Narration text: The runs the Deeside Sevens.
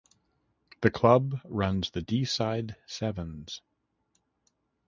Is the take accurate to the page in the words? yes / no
no